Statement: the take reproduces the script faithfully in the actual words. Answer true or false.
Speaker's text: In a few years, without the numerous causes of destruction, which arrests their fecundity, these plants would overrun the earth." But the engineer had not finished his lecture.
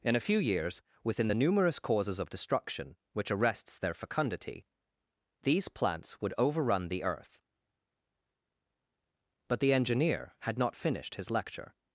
false